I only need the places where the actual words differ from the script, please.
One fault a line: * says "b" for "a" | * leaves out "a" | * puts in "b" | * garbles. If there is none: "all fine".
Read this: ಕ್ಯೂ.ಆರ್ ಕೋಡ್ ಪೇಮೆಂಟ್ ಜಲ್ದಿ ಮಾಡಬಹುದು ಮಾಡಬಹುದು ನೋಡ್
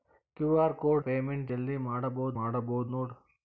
all fine